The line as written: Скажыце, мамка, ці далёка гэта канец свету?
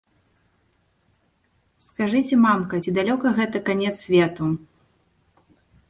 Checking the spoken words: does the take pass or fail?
pass